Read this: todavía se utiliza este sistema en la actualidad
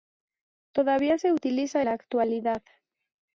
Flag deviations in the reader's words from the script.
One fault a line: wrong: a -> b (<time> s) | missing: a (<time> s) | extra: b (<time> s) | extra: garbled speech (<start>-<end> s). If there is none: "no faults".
missing: este sistema en (1.9 s)